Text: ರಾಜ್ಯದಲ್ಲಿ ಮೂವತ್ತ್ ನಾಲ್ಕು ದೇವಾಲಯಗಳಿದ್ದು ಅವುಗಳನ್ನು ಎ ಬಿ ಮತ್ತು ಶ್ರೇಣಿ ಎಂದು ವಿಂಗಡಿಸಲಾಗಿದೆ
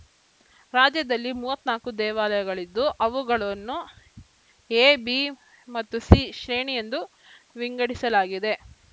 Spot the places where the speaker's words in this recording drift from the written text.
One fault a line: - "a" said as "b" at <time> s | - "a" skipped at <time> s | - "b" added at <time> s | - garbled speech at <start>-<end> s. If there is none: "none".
- "ಸಿ" added at 6.1 s